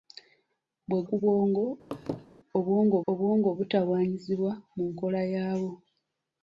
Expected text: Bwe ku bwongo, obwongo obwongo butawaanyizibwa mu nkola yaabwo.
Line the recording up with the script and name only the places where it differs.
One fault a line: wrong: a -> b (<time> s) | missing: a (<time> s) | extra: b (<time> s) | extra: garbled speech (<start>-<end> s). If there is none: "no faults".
no faults